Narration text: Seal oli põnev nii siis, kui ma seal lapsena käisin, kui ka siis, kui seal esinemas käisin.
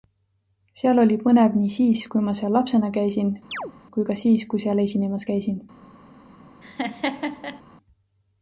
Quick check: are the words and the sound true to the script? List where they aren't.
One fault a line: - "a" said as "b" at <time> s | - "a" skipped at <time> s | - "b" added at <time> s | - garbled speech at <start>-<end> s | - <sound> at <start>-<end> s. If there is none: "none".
- chirp at 3.5-3.7 s
- laugh at 6.6-7.6 s